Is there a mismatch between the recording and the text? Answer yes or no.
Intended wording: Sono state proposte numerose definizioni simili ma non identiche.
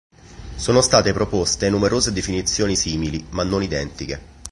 no